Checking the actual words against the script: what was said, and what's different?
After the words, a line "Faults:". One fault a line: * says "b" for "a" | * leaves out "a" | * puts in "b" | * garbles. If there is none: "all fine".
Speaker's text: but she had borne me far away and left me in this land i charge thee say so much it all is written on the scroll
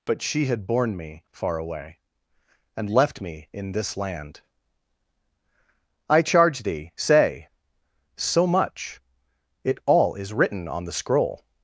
but she had borne me far away and left me in this land i charge thee say so much it all is written on the scroll
Faults:
all fine